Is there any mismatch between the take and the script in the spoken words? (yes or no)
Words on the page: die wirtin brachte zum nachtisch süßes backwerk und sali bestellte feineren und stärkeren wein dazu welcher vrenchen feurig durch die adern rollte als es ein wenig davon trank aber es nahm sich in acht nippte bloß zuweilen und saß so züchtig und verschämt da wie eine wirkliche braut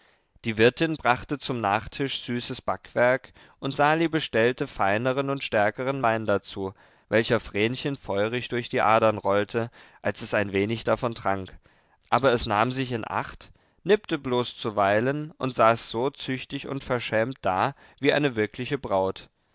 no